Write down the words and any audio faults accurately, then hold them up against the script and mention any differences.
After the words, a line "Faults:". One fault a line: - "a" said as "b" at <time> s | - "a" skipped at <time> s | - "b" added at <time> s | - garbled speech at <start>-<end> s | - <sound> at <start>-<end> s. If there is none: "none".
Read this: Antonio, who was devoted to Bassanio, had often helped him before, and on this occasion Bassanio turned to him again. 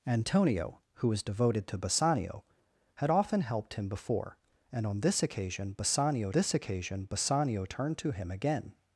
Antonio, who was devoted to Bassanio, had often helped him before, and on this occasion Bassanio this occasion Bassanio turned to him again.
Faults:
- "this occasion Bassanio" added at 6.3 s